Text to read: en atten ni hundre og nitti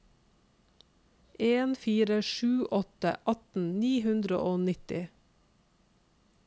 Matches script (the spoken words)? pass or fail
fail